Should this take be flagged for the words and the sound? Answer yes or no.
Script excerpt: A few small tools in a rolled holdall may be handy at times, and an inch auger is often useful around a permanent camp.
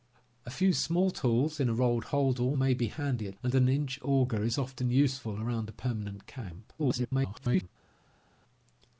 yes